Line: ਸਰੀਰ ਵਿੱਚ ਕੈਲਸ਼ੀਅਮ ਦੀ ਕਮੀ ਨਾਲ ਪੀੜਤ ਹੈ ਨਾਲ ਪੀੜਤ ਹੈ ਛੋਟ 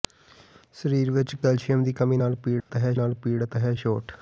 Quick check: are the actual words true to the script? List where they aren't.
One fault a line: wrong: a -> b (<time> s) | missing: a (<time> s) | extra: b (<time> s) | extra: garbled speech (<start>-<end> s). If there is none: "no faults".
no faults